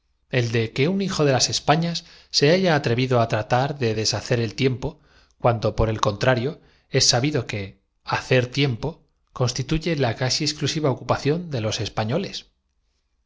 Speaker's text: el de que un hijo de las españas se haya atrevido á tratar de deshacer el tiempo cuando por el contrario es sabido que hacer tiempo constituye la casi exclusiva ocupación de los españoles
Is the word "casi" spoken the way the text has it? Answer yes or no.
yes